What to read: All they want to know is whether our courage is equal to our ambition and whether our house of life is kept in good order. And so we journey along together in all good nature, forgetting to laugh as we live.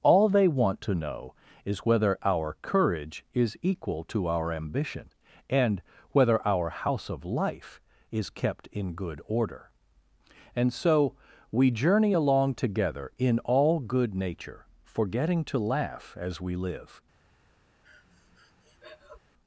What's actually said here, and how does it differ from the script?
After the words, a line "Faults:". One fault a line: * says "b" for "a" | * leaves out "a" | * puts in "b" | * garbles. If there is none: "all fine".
All they want to know is whether our courage is equal to our ambition and whether our house of life is kept in good order. And so we journey along together in all good nature, forgetting to laugh as we live.
Faults:
all fine